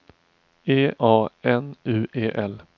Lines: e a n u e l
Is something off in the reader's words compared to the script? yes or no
no